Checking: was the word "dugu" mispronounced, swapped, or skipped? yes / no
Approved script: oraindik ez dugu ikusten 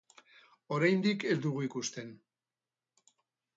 no